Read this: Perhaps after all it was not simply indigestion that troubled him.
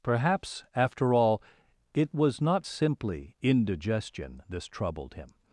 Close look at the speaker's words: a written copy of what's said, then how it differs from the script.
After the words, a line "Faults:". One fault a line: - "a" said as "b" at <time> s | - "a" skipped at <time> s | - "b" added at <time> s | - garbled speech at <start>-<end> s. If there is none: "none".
Perhaps after all it was not simply indigestion this troubled him.
Faults:
- "that" said as "this" at 4.5 s